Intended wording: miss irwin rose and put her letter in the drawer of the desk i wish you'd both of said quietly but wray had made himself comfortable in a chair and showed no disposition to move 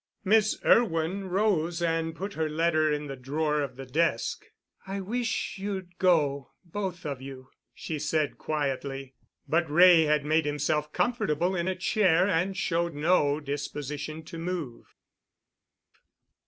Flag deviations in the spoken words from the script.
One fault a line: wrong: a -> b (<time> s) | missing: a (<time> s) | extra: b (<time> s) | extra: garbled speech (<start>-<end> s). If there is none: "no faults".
extra: go (6.0 s)
extra: you she (7.2 s)